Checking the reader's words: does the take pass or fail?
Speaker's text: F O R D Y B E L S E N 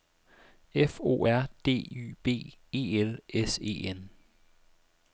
pass